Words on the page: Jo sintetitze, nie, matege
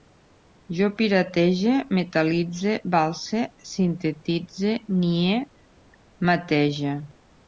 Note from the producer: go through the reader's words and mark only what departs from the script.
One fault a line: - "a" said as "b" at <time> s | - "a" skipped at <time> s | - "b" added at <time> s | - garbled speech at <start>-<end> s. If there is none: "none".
- "piratege metal·litze valse" added at 1.0 s